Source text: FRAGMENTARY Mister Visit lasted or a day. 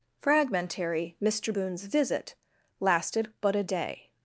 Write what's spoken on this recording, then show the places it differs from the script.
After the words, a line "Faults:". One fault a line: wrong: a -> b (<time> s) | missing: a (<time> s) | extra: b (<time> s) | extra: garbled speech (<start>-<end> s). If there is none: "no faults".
FRAGMENTARY Mister Boone's visit lasted but a day.
Faults:
extra: Boone's (1.5 s)
wrong: or -> but (3.4 s)